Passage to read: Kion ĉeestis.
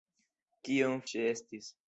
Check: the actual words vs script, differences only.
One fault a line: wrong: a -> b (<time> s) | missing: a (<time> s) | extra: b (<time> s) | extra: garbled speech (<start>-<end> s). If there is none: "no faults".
no faults